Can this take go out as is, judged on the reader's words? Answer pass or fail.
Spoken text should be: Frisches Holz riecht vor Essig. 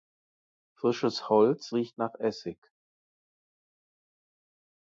fail